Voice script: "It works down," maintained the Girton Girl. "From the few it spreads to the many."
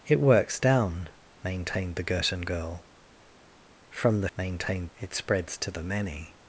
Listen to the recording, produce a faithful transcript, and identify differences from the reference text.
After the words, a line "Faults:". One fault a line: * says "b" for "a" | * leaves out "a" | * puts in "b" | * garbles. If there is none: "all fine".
"It works down," maintained the Girton Girl. "From the maintained it spreads to the many."
Faults:
* says "maintained" for "few"